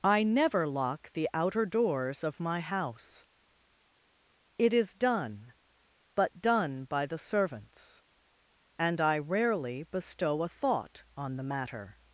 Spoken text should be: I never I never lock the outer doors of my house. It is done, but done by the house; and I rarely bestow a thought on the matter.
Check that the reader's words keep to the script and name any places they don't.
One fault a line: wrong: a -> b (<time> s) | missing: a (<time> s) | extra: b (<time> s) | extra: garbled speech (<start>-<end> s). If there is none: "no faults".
missing: I never (0.7 s)
wrong: house -> servants (7.2 s)